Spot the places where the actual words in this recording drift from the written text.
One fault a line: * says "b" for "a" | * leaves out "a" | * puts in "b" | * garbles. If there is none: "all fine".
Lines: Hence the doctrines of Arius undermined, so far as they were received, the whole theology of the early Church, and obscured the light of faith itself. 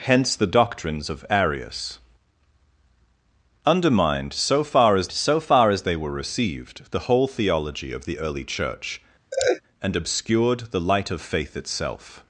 * puts in "so far as"